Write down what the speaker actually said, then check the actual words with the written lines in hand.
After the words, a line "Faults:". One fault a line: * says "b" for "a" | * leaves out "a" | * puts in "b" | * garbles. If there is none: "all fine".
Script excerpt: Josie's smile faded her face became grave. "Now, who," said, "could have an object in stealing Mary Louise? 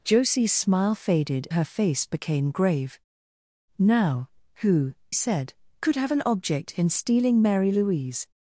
Josie's smile faded her face became grave. "Now, who," said, "could have an object in stealing Mary Louise?
Faults:
all fine